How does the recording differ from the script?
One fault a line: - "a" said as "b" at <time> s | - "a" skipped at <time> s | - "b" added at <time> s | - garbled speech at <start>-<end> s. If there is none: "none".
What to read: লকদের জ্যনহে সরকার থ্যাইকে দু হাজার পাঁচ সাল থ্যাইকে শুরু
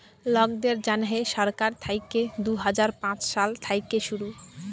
none